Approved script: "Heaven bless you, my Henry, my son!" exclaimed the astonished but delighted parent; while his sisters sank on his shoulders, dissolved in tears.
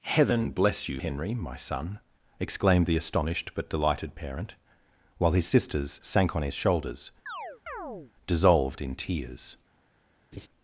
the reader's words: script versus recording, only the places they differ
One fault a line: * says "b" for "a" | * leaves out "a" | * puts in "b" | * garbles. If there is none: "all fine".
* leaves out "my"